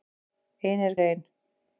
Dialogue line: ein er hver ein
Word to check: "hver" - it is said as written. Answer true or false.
false